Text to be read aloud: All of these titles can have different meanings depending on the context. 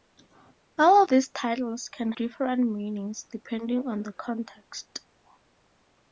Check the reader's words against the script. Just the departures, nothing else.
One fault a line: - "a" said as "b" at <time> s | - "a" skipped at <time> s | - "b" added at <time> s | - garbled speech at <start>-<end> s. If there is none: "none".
- "of" skipped at 1.0 s
- "have" skipped at 2.1 s